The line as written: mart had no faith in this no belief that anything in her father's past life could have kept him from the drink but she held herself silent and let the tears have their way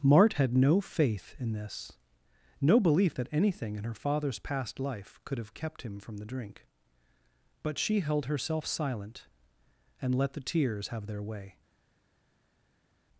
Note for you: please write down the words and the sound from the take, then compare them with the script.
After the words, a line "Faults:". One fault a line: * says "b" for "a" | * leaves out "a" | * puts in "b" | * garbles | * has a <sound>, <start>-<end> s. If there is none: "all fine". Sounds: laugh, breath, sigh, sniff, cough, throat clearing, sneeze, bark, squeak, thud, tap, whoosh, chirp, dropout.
mart had no faith in this no belief that anything in her father's past life could have kept him from the drink but she held herself silent and let the tears have their way
Faults:
all fine